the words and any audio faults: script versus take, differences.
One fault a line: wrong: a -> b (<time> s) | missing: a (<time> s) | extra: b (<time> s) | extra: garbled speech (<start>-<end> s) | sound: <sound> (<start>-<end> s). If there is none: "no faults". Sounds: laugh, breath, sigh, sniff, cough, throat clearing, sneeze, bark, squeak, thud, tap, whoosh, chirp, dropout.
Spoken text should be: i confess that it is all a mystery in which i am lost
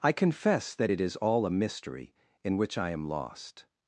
no faults